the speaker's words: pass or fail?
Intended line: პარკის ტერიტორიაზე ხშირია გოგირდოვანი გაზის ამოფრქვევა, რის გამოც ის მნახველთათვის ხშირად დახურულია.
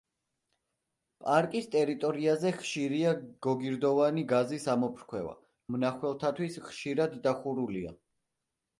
fail